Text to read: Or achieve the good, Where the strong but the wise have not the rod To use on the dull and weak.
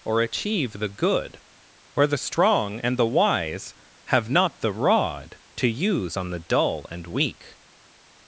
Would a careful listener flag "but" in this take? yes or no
yes